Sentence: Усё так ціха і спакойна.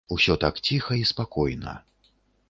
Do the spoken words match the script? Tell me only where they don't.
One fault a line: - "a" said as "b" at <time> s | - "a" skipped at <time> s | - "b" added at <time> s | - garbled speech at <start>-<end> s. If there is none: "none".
none